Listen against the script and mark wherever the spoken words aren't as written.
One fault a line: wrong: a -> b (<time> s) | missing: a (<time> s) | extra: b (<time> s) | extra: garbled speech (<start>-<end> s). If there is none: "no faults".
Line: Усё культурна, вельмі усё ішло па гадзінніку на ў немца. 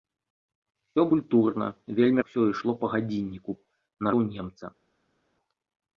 no faults